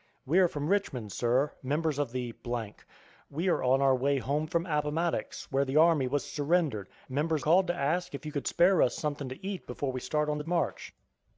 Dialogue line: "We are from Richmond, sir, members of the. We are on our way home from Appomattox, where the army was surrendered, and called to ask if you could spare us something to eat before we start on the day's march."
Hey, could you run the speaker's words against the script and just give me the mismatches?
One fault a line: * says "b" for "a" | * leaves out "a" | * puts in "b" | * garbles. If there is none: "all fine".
* says "members" for "and"
* leaves out "day's"